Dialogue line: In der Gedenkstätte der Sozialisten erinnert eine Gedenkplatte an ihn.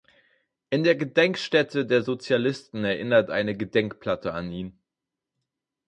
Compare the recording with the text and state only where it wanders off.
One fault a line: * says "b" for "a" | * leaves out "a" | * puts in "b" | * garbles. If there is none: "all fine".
all fine